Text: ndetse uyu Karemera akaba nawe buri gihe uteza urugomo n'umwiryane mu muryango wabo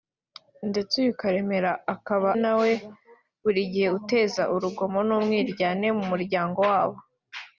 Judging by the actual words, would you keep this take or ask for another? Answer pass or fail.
pass